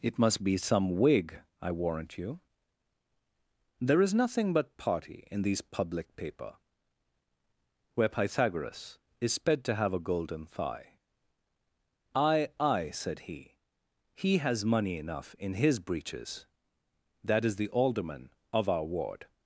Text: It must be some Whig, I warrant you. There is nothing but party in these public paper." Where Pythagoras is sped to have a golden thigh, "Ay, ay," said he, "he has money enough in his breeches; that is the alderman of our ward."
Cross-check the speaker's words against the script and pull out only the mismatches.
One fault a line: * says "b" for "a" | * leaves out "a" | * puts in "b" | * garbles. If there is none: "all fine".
all fine